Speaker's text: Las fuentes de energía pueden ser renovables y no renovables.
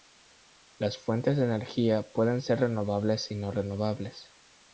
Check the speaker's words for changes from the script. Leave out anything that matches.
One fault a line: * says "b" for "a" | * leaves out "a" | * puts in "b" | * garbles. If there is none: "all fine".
all fine